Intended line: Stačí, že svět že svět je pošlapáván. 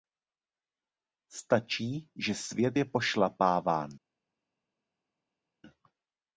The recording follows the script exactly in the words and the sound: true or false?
false